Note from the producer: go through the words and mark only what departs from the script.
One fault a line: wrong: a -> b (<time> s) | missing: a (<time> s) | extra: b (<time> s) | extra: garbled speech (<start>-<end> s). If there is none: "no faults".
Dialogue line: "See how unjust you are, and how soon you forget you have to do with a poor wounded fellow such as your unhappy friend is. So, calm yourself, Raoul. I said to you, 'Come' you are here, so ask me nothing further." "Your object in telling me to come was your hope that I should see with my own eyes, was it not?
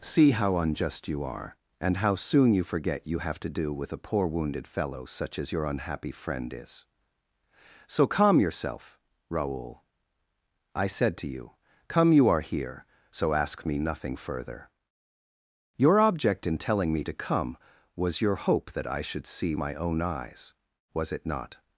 missing: with (19.5 s)